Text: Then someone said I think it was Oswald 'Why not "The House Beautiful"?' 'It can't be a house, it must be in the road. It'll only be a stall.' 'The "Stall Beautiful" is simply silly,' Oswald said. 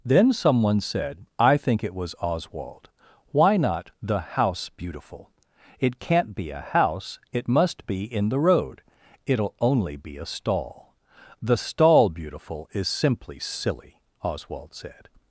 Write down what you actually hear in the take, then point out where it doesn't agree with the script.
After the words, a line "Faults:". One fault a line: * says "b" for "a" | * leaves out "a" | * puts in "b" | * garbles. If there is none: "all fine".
Then someone said I think it was Oswald 'Why not "The House Beautiful"?' 'It can't be a house, it must be in the road. It'll only be a stall.' 'The "Stall Beautiful" is simply silly,' Oswald said.
Faults:
all fine